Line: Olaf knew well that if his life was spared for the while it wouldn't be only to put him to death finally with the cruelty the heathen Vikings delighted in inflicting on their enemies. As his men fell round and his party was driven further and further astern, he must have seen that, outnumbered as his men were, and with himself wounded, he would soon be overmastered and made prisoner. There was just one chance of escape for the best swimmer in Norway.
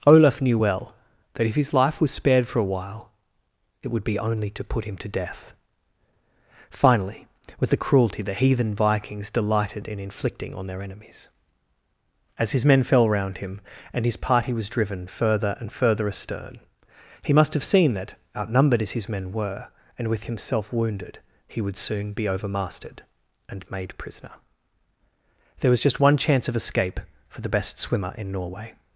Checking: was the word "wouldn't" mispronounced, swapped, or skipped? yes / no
yes